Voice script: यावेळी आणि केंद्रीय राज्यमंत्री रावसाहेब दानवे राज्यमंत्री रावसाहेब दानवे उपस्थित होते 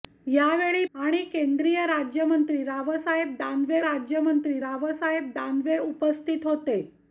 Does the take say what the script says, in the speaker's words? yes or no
yes